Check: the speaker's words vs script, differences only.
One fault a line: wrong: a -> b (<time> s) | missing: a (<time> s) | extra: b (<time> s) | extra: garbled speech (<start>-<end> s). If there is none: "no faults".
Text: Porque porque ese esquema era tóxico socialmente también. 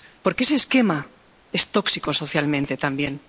missing: porque (0.4 s)
wrong: era -> es (1.5 s)